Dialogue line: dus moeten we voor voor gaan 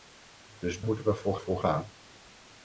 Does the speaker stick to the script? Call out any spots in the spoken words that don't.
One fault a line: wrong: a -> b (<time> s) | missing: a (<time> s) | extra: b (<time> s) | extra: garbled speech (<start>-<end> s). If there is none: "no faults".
no faults